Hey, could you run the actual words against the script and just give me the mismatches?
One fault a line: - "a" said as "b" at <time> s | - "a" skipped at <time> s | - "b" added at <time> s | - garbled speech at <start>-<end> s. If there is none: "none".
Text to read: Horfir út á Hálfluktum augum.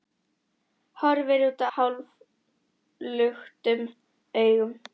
none